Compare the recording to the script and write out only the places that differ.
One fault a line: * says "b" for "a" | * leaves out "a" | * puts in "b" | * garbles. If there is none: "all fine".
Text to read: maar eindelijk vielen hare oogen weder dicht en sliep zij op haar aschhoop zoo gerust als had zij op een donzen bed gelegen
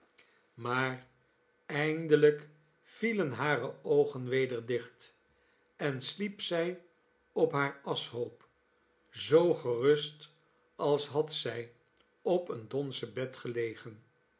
all fine